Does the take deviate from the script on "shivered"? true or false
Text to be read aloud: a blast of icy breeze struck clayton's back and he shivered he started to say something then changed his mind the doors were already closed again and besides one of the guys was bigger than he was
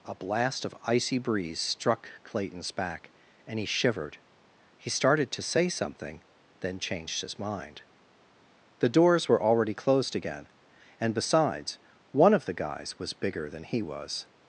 false